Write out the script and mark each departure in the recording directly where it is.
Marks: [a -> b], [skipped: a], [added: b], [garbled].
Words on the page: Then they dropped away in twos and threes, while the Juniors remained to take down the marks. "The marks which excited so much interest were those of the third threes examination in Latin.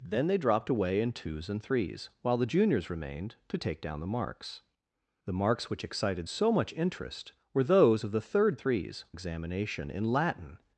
Then they dropped away in twos and threes, while the Juniors remained to take down the marks. "The marks which excited so much interest were those of the third threes examination in Latin.